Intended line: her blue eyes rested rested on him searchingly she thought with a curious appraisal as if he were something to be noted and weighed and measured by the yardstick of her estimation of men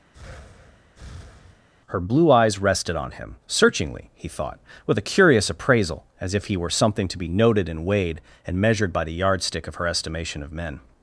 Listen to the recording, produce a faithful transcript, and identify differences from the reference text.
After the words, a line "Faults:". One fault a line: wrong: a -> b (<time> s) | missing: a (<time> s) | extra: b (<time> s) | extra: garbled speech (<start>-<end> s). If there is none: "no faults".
her blue eyes rested on him searchingly he thought with a curious appraisal as if he were something to be noted and weighed and measured by the yardstick of her estimation of men
Faults:
missing: rested (3.0 s)
wrong: she -> he (4.1 s)